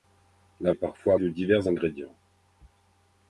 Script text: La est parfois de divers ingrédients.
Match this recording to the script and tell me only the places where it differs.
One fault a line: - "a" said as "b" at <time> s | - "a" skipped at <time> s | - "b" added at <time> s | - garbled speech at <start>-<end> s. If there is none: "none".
none